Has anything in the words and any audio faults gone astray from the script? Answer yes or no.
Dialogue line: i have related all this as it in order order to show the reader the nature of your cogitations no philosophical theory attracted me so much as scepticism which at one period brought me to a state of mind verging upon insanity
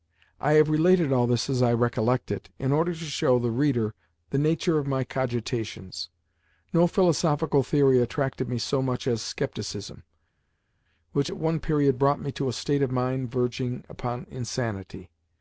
yes